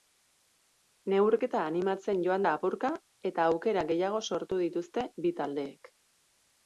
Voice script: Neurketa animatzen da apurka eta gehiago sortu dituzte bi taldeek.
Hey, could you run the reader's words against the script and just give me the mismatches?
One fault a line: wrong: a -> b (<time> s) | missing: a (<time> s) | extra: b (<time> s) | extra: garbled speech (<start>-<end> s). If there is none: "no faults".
extra: joan (2.3 s)
extra: aukera (3.6 s)